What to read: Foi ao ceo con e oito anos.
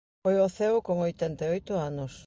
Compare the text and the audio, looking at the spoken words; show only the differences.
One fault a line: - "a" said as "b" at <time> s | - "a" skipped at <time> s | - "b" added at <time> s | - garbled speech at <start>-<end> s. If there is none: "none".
- "oitenta" added at 1.1 s